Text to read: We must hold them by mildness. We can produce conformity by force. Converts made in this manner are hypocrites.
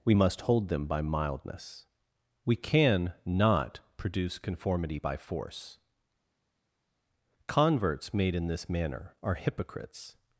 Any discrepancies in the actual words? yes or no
yes